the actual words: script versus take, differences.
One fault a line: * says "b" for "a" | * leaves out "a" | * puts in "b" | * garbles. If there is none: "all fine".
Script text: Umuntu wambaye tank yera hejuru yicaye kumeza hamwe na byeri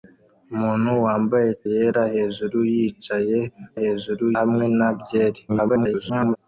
* leaves out "tank"
* says "hejuru" for "kumeza"
* garbles